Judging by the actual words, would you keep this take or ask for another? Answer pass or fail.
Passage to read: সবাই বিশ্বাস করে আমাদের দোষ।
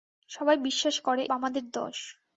pass